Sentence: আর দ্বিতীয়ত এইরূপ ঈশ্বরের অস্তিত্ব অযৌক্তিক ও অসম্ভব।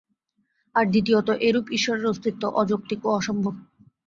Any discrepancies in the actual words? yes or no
no